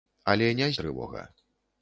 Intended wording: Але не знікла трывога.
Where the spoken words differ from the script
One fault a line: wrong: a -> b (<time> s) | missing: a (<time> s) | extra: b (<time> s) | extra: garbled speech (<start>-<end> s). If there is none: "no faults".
missing: знікла (0.7 s)